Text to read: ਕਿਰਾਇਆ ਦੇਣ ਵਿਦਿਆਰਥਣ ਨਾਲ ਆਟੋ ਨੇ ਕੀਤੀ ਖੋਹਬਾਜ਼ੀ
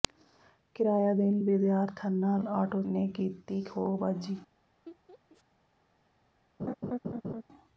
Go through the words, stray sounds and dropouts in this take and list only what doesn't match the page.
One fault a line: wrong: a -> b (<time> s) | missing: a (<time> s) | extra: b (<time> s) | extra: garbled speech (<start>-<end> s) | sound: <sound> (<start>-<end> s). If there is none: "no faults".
sound: laugh (4.9-5.4 s)
sound: laugh (6.6-7.4 s)